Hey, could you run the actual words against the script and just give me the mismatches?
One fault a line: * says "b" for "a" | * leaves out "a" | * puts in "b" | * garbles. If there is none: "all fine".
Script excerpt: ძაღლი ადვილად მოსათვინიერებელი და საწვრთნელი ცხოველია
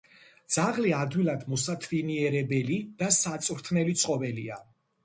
all fine